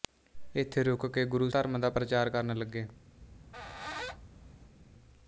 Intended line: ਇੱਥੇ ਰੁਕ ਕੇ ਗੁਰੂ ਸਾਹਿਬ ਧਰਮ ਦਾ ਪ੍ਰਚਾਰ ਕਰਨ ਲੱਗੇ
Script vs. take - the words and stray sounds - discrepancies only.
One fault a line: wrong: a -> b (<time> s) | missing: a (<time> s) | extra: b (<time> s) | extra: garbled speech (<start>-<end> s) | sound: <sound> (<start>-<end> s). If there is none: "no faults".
missing: ਸਾਹਿਬ (1.5 s)
sound: squeak (3.2-4.7 s)